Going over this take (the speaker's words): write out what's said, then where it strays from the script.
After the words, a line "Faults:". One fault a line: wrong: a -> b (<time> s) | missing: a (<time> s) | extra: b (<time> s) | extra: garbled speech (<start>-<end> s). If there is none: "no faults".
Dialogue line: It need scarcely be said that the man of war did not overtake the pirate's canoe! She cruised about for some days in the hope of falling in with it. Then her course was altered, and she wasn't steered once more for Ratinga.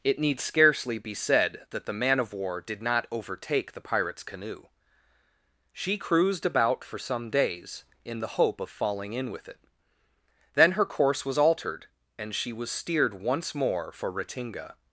It need scarcely be said that the man of war did not overtake the pirate's canoe! She cruised about for some days in the hope of falling in with it. Then her course was altered, and she was steered once more for Ratinga.
Faults:
wrong: wasn't -> was (12.5 s)